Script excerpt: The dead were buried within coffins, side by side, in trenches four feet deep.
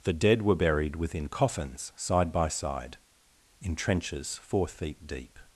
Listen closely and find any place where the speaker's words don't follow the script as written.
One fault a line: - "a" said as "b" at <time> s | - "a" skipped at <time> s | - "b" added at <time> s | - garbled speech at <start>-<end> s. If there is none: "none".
none